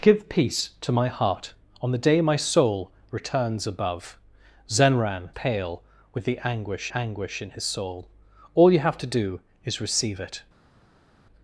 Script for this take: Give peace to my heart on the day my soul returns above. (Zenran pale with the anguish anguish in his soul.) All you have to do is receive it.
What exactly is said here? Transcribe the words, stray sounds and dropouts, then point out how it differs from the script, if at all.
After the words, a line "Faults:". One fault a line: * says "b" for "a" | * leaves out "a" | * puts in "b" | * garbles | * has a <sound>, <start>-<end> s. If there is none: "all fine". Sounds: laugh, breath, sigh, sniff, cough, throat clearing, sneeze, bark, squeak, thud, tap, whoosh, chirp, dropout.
Give peace to my heart on the day my soul returns above. (Zenran pale with the anguish anguish in his soul.) All you have to do is receive it.
Faults:
all fine